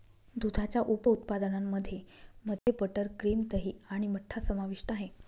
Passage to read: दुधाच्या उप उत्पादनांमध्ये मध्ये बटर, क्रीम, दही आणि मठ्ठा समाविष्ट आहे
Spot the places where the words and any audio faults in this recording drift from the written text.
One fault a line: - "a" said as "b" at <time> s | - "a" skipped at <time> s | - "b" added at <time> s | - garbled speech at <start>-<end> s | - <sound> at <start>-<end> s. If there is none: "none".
- dropout at 2.6-2.7 s